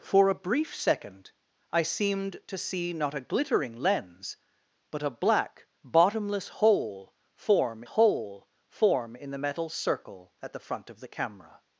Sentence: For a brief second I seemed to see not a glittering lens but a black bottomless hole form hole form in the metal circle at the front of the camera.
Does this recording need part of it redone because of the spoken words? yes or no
no